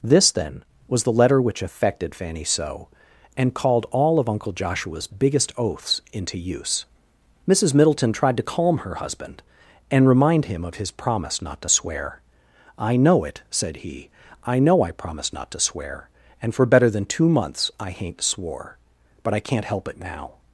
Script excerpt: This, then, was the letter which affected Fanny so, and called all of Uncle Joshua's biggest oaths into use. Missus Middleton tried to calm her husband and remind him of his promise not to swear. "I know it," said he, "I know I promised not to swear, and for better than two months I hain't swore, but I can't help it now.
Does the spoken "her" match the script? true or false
true